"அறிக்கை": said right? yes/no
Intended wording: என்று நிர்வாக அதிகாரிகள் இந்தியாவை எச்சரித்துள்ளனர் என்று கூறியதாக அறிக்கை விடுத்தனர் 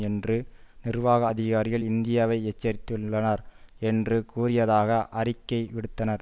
yes